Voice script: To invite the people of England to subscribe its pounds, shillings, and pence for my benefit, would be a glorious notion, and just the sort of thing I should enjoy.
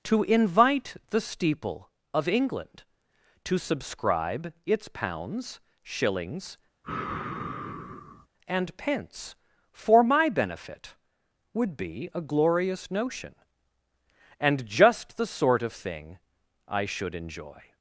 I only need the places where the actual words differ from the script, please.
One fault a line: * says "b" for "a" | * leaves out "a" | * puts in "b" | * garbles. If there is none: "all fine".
* says "steeple" for "people"